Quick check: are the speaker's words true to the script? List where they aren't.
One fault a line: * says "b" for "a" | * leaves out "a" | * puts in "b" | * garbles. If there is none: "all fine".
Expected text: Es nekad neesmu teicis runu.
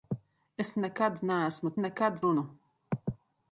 * says "nekad" for "teicis"